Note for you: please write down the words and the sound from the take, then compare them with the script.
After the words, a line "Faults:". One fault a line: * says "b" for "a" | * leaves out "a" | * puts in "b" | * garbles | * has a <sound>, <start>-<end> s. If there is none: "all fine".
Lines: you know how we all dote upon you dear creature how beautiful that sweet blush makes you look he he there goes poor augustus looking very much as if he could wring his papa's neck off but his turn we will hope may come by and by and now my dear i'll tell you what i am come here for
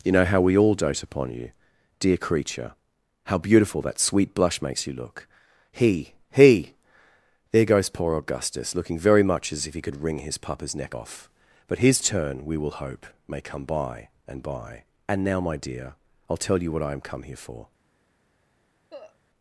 you know how we all dote upon you dear creature how beautiful that sweet blush makes you look he he there goes poor augustus looking very much as if he could wring his papa's neck off but his turn we will hope may come by and by and now my dear i'll tell you what i am come here for
Faults:
* has a cough, 18.9-19.2 s